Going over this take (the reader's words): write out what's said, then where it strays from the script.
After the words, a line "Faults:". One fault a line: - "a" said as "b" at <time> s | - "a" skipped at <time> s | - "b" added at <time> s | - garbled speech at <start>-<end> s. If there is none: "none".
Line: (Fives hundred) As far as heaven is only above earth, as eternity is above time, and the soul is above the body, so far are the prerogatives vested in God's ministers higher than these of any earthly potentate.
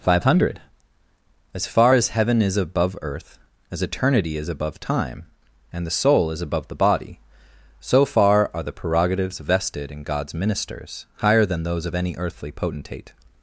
(Five hundred) As far as heaven is above earth, as eternity is above time, and the soul is above the body, so far are the prerogatives vested in God's ministers higher than those of any earthly potentate.
Faults:
- "Fives" said as "Five" at 0.0 s
- "only" skipped at 2.6 s
- "these" said as "those" at 11.6 s